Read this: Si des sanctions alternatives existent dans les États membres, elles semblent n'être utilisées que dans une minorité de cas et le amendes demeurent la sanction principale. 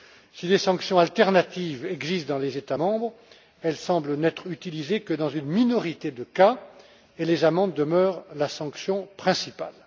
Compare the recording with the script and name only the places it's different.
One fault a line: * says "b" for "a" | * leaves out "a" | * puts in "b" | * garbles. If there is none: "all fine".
* says "les" for "le"